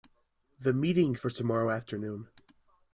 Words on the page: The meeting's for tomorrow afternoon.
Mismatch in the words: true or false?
false